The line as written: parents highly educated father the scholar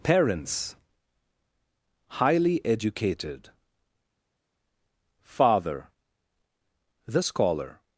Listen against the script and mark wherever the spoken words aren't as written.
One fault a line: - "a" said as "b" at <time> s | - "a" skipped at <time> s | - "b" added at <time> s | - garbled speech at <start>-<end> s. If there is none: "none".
none